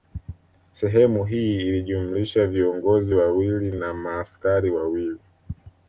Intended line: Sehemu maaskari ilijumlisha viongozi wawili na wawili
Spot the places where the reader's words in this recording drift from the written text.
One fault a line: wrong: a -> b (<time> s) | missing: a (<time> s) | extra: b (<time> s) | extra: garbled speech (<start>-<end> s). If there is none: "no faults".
wrong: maaskari -> hii (1.2 s)
extra: maaskari (3.9 s)